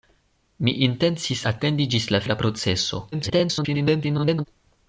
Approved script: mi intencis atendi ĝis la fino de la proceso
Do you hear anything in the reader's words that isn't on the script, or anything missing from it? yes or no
yes